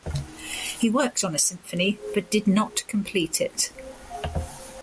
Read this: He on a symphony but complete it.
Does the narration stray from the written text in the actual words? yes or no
yes